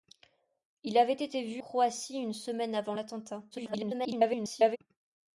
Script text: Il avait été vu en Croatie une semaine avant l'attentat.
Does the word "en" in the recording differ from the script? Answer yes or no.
yes